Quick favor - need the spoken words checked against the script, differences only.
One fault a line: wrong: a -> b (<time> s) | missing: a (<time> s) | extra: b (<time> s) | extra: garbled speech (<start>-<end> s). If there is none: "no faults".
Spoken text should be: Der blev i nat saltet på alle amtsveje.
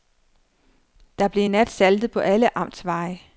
no faults